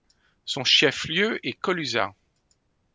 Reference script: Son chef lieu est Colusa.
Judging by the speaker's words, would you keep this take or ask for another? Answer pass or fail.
pass